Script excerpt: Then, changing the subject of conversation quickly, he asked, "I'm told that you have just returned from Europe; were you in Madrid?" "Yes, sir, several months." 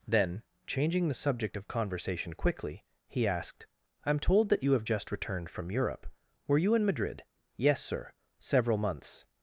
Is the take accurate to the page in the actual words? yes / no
yes